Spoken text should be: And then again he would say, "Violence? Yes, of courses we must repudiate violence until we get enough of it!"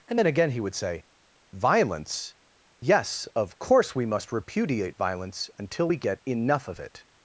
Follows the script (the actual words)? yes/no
no